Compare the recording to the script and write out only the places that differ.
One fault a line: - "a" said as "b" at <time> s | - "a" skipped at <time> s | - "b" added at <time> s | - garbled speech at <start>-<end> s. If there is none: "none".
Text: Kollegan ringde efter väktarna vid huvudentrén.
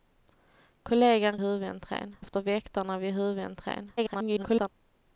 - "ringde" said as "huvudentrén" at 1.4 s
- garbled speech at 4.0-4.7 s